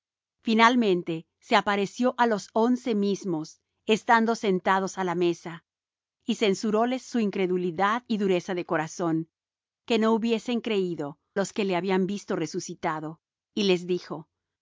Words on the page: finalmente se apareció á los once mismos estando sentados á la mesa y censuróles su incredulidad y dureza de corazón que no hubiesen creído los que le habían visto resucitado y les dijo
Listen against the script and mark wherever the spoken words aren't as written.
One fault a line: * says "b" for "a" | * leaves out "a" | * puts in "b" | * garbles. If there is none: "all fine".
all fine